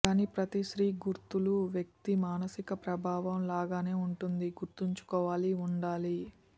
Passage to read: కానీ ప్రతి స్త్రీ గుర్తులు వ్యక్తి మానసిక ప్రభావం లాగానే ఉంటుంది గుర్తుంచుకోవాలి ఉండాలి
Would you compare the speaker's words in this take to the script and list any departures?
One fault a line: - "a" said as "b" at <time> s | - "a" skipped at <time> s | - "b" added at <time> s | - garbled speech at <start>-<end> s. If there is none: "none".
none